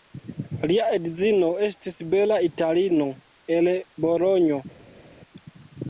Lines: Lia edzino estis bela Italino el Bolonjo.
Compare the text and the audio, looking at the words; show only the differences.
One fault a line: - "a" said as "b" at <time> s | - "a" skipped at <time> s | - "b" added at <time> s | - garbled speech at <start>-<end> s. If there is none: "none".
none